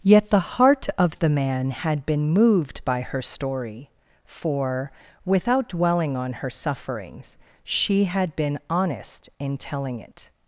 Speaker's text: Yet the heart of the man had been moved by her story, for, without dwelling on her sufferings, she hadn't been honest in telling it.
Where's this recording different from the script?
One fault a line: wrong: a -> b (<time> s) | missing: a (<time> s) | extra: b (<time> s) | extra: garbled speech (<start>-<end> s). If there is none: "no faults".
wrong: hadn't -> had (8.1 s)